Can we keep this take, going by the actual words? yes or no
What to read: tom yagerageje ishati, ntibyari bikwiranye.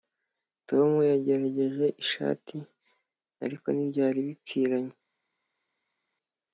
no